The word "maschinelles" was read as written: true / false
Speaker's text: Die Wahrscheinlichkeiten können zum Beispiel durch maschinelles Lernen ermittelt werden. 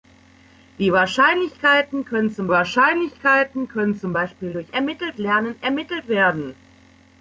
false